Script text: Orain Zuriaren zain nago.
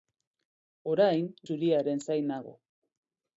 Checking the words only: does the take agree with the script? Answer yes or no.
yes